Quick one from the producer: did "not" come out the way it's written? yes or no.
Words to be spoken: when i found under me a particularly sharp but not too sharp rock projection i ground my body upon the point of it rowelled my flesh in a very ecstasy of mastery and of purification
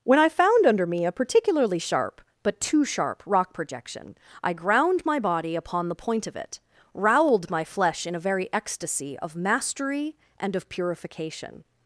no